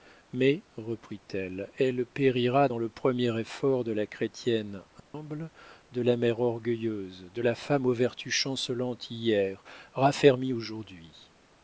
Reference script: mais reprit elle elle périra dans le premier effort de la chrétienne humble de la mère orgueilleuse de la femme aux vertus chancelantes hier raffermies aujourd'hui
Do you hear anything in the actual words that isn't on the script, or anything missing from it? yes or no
no